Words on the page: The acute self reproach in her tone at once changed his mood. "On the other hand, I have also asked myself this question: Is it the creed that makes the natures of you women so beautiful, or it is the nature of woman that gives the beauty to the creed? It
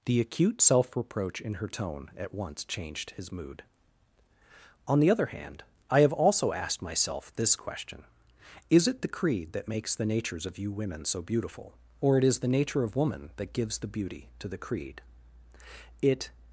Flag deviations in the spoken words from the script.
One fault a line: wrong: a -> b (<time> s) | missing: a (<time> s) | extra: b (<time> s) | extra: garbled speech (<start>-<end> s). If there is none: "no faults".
no faults